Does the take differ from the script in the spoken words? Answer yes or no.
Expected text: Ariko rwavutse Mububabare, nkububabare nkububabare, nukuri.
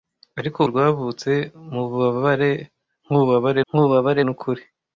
no